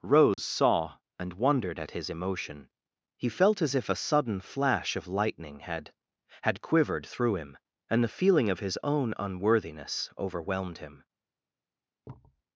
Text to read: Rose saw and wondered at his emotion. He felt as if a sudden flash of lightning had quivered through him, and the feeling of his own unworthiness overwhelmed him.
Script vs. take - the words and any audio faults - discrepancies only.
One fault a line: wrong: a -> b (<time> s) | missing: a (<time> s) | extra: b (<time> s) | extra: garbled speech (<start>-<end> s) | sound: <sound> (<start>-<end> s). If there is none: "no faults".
sound: dropout (0.3-0.4 s)
extra: had (6.4 s)
sound: thud (12.0-12.4 s)